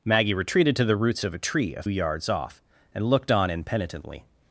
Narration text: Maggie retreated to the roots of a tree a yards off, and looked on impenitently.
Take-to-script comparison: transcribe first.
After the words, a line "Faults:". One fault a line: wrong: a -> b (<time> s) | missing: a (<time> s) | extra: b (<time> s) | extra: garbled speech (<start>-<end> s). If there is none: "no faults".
Maggie retreated to the roots of a tree a yards off, and looked on impenitently.
Faults:
no faults